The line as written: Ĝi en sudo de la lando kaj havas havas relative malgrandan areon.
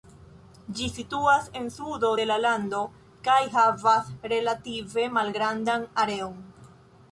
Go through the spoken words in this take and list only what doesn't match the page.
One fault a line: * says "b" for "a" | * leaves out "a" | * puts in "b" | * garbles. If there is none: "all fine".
* puts in "situas"
* leaves out "havas"